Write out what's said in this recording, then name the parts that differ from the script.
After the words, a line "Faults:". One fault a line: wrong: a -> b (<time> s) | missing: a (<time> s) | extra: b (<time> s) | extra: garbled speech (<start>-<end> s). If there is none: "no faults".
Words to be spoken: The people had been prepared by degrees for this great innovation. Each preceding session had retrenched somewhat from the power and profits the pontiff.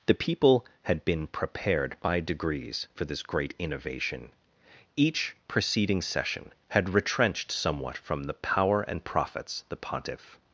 The people had been prepared by degrees for this great innovation. Each preceding session had retrenched somewhat from the power and profits the pontiff.
Faults:
no faults